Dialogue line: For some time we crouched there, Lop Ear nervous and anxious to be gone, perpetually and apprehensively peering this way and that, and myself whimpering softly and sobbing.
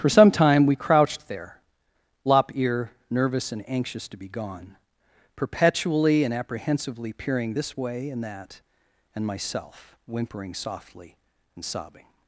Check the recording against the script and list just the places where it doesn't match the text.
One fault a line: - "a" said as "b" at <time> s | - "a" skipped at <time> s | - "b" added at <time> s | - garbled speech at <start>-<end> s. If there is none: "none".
none